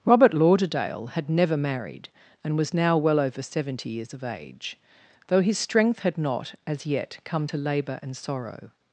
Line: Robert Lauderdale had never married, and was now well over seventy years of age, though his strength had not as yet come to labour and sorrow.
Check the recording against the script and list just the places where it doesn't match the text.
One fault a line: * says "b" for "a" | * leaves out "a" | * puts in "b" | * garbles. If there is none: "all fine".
all fine